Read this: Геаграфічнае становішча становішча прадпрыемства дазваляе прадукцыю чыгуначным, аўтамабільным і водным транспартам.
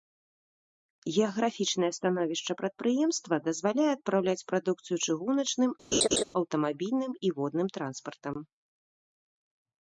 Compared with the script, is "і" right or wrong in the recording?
right